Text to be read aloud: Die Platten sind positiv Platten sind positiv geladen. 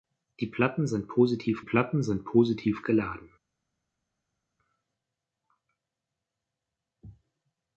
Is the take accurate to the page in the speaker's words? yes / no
yes